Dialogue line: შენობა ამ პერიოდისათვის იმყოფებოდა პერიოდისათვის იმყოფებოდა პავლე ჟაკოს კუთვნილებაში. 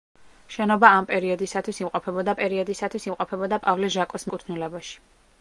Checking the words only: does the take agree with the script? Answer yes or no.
yes